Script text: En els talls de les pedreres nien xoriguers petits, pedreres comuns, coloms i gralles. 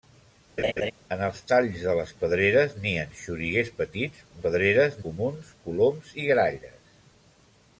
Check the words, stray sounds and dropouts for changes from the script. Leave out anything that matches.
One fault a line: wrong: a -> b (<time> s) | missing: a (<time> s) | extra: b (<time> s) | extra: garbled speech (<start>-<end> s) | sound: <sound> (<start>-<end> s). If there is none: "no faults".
sound: laugh (0.6-0.9 s)